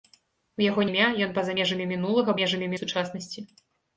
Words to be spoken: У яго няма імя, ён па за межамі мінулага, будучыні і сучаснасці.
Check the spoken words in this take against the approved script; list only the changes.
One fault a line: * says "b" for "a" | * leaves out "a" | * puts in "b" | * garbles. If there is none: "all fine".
* leaves out "няма"
* says "межамі" for "будучыні"